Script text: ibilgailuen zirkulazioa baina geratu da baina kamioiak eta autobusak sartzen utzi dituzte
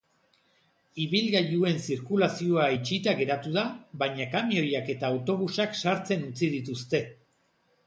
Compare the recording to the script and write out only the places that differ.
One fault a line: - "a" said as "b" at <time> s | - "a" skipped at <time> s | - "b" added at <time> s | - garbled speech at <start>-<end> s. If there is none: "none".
- "baina" said as "itxita" at 2.8 s